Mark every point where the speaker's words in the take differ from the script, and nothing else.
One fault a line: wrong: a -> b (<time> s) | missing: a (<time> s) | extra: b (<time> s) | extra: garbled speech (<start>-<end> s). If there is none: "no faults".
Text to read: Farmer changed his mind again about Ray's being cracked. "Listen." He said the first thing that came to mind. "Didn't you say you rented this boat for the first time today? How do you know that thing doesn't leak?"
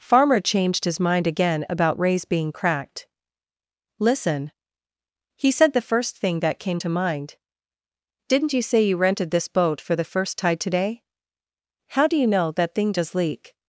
wrong: time -> tide (10.4 s)
wrong: doesn't -> does (12.9 s)